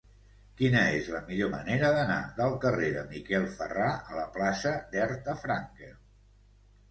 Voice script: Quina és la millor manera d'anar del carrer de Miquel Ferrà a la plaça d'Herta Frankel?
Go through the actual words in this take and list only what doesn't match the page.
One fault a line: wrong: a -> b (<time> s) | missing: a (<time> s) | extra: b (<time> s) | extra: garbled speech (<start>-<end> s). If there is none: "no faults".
no faults